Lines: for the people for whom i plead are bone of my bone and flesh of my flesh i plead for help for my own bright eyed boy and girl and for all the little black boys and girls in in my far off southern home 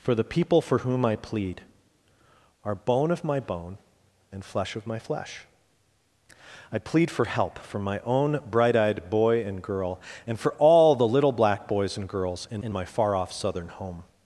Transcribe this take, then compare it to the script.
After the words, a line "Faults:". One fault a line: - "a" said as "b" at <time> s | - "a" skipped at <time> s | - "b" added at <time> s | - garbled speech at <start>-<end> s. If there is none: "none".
for the people for whom i plead are bone of my bone and flesh of my flesh i plead for help for my own bright eyed boy and girl and for all the little black boys and girls in in my far off southern home
Faults:
none